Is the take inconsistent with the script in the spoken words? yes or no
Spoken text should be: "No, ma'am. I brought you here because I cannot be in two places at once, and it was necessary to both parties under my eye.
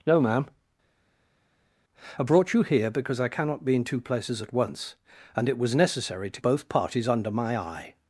no